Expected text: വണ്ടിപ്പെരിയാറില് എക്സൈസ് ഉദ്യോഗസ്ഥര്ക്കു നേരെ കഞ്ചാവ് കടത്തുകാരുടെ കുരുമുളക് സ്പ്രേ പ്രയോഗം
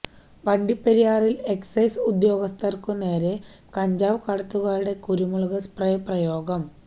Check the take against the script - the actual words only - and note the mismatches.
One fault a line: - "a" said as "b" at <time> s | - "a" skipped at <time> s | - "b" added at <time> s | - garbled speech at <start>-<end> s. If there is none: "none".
none